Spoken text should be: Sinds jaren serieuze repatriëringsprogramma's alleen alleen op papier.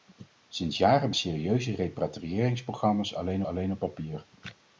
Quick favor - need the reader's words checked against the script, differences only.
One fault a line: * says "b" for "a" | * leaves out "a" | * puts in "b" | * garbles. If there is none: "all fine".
all fine